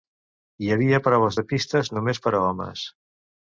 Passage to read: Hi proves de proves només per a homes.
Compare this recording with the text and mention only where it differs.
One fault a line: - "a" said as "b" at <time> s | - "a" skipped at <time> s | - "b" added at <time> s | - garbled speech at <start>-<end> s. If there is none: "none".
- "havia" added at 0.8 s
- "proves" said as "pistes" at 1.5 s